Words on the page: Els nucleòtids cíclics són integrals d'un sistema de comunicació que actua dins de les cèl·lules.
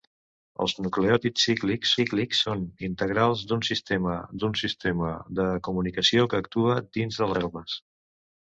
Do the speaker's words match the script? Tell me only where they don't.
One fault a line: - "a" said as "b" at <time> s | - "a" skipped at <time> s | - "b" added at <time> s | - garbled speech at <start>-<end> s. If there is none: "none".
- "cíclics" added at 2.0 s
- "d'un sistema" added at 4.4 s
- "les" skipped at 7.3 s